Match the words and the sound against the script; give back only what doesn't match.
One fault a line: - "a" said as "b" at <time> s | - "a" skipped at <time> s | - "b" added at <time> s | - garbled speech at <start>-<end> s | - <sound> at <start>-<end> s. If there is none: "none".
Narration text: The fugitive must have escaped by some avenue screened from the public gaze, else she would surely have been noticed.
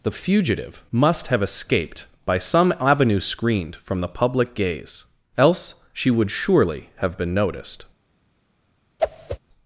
- whoosh at 9.0-9.4 s